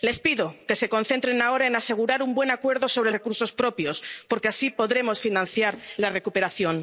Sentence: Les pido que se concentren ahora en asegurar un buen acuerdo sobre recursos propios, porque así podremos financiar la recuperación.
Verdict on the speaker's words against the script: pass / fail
pass